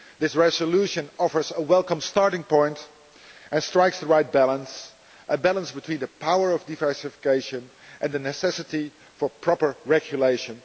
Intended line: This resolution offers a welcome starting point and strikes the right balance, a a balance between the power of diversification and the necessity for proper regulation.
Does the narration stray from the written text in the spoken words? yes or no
yes